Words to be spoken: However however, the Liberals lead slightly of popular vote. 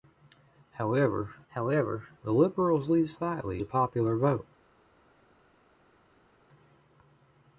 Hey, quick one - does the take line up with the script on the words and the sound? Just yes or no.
yes